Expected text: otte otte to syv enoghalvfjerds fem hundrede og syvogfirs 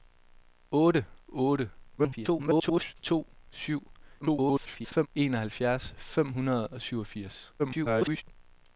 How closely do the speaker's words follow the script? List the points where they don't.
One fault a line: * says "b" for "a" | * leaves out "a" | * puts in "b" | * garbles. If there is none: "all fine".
* garbles
* garbles
* garbles